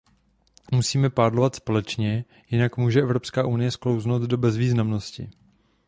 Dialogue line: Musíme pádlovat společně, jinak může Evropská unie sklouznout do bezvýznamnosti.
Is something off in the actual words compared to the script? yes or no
no